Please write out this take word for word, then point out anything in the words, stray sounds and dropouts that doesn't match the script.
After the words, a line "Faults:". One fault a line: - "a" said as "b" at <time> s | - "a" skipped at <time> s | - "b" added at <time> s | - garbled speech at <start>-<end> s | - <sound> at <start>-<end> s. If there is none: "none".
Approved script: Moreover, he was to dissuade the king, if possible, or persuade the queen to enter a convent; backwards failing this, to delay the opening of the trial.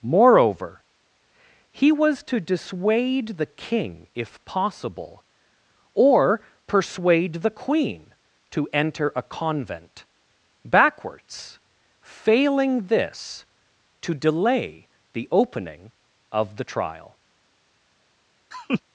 Moreover, he was to dissuade the king, if possible, or persuade the queen to enter a convent; backwards failing this, to delay the opening of the trial.
Faults:
- laugh at 18.5-18.8 s